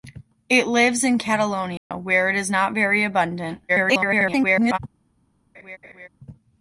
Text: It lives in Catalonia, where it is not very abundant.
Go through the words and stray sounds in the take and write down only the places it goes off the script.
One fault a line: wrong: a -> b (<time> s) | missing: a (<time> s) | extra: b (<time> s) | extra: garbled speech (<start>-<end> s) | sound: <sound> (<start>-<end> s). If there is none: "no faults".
sound: dropout (1.8-1.9 s)
extra: garbled speech (3.7-4.8 s)
sound: laugh (5.5-6.1 s)